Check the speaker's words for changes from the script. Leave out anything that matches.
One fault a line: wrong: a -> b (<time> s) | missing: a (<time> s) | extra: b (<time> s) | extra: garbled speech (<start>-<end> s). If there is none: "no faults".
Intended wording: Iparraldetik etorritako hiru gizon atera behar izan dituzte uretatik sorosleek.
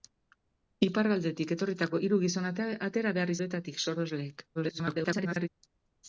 missing: izan dituzte (3.4 s)
extra: garbled speech (4.5-5.5 s)